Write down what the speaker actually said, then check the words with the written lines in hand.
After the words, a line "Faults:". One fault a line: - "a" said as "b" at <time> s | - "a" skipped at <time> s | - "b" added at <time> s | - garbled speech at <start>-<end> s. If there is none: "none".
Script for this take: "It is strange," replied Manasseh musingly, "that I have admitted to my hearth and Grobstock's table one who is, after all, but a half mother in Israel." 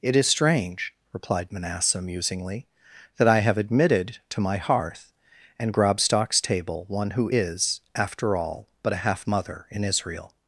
"It is strange," replied Manasseh musingly, "that I have admitted to my hearth and Grobstock's table one who is, after all, but a half mother in Israel."
Faults:
none